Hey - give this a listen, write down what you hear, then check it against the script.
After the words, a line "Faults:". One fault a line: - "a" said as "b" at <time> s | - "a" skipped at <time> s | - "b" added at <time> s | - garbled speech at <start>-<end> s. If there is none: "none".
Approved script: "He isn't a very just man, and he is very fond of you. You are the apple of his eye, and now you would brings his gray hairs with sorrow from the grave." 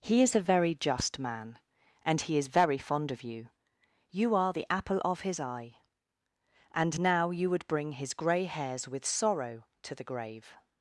"He is a very just man, and he is very fond of you. You are the apple of his eye, and now you would bring his gray hairs with sorrow to the grave."
Faults:
- "isn't" said as "is" at 0.2 s
- "brings" said as "bring" at 7.7 s
- "from" said as "to" at 9.8 s